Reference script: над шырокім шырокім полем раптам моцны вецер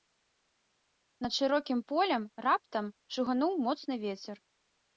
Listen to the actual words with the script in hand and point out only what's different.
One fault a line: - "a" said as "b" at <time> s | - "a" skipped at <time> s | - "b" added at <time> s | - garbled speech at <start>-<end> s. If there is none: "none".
- "шырокім" skipped at 1.8 s
- "шугануў" added at 3.2 s